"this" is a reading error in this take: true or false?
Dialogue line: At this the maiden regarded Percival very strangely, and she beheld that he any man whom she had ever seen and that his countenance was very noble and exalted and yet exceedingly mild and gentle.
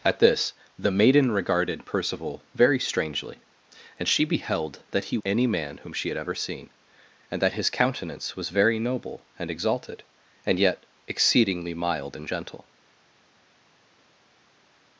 false